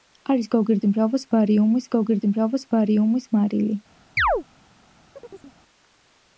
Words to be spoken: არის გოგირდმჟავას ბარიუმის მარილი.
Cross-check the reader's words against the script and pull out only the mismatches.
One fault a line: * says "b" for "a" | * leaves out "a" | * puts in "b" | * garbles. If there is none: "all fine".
* puts in "გოგირდმჟავას ბარიუმის"